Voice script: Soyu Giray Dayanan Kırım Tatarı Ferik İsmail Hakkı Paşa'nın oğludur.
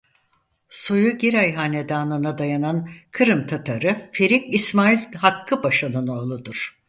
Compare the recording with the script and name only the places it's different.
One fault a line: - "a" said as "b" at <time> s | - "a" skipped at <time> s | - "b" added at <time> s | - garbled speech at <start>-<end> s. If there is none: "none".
- "Hanedanı'na" added at 1.5 s